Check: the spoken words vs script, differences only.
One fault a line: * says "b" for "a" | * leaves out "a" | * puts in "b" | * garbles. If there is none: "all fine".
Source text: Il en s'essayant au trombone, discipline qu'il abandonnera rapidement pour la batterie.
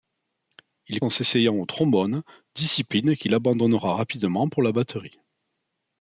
all fine